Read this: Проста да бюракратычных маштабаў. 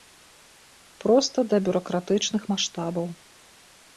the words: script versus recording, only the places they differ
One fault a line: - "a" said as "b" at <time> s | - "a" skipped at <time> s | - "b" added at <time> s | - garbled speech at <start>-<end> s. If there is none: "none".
none